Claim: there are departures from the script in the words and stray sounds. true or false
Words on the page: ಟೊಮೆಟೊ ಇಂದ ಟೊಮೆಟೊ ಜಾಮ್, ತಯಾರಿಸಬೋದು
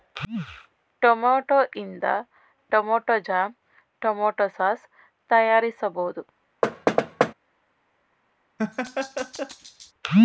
true